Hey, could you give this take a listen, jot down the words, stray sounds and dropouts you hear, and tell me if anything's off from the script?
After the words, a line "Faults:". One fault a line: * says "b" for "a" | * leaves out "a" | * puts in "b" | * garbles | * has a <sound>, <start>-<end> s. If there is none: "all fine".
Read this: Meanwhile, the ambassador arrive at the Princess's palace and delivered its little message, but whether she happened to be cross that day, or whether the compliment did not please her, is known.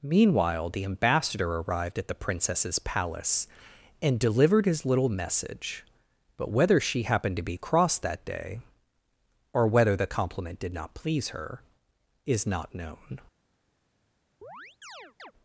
Meanwhile, the ambassador arrived at the Princess's palace and delivered his little message, but whether she happened to be cross that day, or whether the compliment did not please her, is not known.
Faults:
* says "arrived" for "arrive"
* says "his" for "its"
* puts in "not"
* has a chirp, 14.4-15.3 s